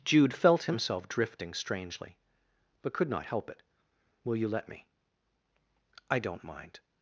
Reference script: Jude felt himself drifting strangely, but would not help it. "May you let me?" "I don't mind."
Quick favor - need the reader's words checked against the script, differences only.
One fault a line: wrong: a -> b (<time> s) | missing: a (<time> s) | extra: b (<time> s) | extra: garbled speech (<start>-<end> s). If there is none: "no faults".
wrong: would -> could (2.9 s)
wrong: May -> Will (4.2 s)